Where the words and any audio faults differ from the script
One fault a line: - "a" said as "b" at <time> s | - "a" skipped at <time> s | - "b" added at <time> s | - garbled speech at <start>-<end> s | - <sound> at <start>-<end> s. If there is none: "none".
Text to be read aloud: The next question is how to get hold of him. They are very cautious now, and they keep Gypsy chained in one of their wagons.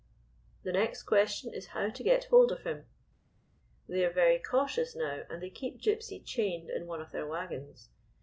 none